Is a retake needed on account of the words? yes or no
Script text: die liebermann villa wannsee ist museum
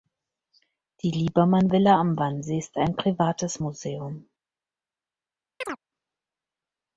yes